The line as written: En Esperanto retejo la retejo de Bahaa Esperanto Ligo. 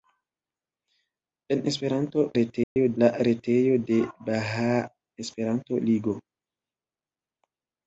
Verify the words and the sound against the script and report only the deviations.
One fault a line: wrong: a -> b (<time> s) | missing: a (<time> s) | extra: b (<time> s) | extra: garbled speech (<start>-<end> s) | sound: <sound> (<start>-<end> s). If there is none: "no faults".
sound: dropout (2.6-2.8 s)